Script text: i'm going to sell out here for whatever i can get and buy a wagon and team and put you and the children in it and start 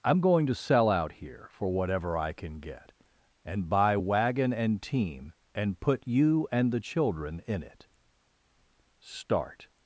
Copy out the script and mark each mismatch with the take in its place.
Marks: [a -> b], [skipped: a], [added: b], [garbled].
i'm going to sell out here for whatever i can get and buy [skipped: a] wagon and team and put you and the children in it [skipped: and] start